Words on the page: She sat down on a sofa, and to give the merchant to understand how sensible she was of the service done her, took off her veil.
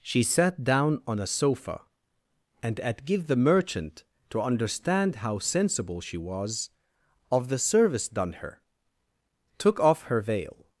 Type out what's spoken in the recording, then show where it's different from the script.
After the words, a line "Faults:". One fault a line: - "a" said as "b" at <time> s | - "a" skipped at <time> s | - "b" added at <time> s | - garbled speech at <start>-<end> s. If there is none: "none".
She sat down on a sofa, and at give the merchant to understand how sensible she was of the service done her, took off her veil.
Faults:
- "to" said as "at" at 2.8 s